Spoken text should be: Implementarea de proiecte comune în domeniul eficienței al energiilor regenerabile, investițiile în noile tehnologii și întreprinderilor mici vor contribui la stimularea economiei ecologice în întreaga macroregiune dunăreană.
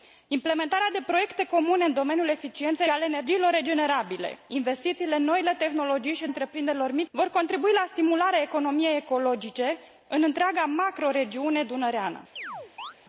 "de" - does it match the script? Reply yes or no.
yes